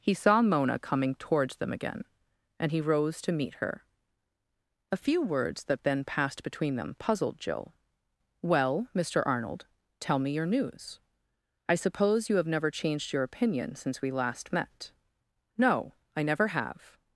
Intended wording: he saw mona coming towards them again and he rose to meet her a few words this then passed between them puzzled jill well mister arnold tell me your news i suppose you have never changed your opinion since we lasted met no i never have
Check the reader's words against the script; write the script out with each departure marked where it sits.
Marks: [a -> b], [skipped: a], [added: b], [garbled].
he saw mona coming towards them again and he rose to meet her a few words [this -> that] then passed between them puzzled jill well mister arnold tell me your news i suppose you have never changed your opinion since we [lasted -> last] met no i never have